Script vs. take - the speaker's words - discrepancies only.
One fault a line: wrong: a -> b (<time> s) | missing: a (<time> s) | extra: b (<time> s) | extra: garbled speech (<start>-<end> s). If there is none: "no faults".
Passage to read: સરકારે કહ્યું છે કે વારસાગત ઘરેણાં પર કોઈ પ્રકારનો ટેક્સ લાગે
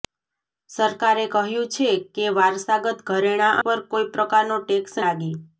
no faults